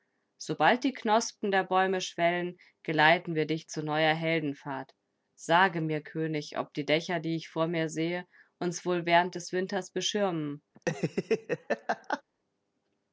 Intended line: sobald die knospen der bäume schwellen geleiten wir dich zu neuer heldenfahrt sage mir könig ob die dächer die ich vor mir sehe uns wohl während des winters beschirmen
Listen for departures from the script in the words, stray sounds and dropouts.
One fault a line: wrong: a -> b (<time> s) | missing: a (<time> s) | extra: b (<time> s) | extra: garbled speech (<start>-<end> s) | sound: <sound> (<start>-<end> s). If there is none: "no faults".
sound: laugh (10.8-12.2 s)